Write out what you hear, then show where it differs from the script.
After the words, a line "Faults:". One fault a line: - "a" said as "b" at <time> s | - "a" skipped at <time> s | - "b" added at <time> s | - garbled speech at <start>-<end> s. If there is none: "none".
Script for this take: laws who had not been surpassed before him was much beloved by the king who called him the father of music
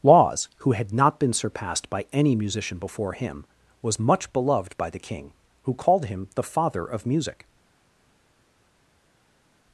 laws who had not been surpassed by any musician before him was much beloved by the king who called him the father of music
Faults:
- "by any musician" added at 1.9 s